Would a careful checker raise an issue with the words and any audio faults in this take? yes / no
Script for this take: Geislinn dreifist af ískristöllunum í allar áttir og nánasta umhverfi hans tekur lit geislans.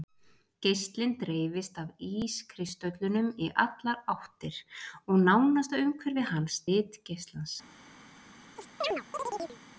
yes